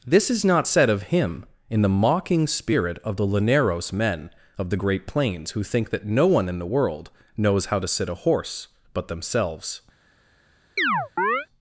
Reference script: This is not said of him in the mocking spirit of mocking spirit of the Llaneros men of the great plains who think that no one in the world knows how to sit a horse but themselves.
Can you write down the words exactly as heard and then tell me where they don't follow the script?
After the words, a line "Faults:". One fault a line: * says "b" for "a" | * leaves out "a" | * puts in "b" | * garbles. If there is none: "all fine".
This is not said of him in the mocking spirit of the Llaneros men of the great plains who think that no one in the world knows how to sit a horse but themselves.
Faults:
* leaves out "mocking spirit of"